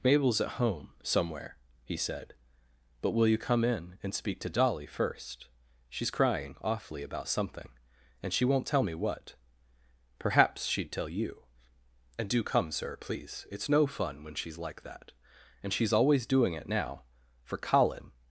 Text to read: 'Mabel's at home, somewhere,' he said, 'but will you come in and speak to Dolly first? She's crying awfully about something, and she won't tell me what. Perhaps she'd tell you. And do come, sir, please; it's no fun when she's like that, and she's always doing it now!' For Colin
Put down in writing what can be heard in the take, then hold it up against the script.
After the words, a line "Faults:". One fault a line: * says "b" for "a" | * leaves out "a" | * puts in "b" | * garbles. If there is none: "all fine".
'Mabel's at home, somewhere,' he said, 'but will you come in and speak to Dolly first? She's crying awfully about something, and she won't tell me what. Perhaps she'd tell you. And do come, sir, please; it's no fun when she's like that, and she's always doing it now!' For Colin
Faults:
all fine